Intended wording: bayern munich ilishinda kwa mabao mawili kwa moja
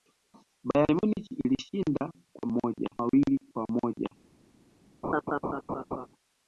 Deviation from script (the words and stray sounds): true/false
true